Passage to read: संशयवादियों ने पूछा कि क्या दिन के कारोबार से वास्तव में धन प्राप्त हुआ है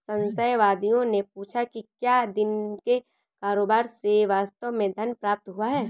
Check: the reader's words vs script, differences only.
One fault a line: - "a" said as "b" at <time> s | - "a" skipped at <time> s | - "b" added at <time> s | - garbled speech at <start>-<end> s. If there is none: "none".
none